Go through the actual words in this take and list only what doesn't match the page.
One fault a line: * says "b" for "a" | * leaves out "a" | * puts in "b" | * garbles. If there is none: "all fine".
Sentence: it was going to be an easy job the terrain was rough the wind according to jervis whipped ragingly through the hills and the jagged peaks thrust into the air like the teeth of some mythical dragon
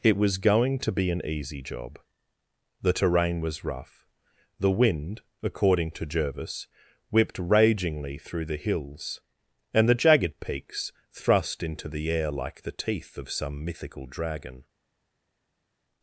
all fine